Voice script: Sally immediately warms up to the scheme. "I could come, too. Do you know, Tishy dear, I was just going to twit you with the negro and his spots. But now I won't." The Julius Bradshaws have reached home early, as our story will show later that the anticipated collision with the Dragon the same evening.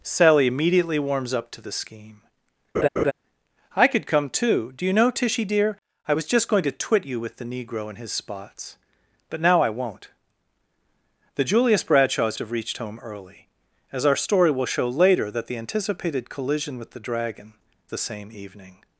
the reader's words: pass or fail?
pass